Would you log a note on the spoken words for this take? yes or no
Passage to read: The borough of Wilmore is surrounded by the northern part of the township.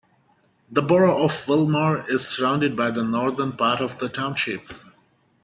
no